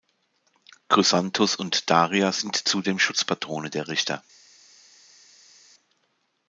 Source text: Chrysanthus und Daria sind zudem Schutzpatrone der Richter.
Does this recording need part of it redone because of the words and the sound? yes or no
no